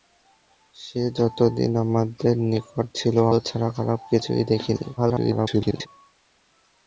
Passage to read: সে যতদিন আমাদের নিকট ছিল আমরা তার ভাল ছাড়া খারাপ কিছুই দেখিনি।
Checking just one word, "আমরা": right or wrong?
wrong